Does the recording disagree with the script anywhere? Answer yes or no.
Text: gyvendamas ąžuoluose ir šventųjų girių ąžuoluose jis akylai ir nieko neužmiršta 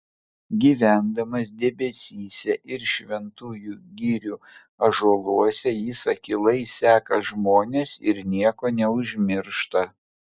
yes